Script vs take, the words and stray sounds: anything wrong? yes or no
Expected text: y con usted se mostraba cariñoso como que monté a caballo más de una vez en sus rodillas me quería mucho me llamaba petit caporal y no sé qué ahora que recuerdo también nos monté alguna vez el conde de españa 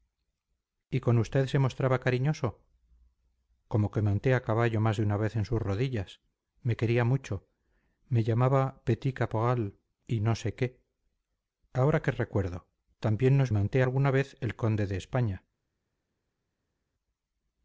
no